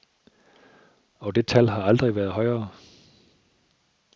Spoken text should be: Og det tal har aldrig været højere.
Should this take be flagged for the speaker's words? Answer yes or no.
no